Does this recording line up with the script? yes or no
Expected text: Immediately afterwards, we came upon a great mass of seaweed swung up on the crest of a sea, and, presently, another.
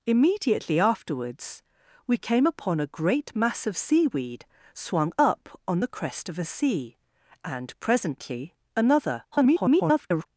no